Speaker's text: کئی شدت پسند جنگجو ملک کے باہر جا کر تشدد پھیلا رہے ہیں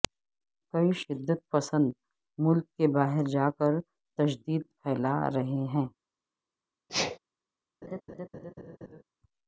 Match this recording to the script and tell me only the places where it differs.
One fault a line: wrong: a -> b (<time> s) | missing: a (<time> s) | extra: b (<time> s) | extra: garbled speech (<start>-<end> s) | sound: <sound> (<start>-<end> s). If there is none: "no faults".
missing: جنگجو (1.9 s)
sound: sneeze (6.9-7.2 s)
sound: laugh (7.8-9.0 s)